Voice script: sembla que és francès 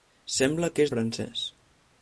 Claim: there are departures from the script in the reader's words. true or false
false